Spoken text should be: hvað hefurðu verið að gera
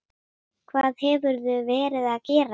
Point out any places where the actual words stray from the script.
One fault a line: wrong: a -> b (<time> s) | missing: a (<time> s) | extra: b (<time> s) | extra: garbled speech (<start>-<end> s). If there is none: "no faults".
no faults